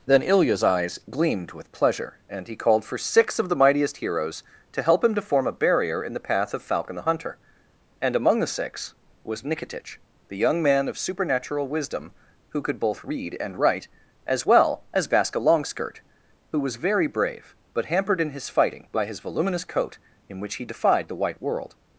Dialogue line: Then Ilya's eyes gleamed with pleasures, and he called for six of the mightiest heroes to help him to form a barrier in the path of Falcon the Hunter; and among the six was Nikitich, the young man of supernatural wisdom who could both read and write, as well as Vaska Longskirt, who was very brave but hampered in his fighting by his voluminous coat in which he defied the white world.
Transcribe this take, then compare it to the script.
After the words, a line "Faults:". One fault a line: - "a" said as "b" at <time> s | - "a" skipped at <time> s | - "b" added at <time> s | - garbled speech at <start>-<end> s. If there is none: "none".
Then Ilya's eyes gleamed with pleasure, and he called for six of the mightiest heroes to help him to form a barrier in the path of Falcon the Hunter; and among the six was Nikitich, the young man of supernatural wisdom who could both read and write, as well as Vaska Longskirt, who was very brave but hampered in his fighting by his voluminous coat in which he defied the white world.
Faults:
- "pleasures" said as "pleasure" at 1.7 s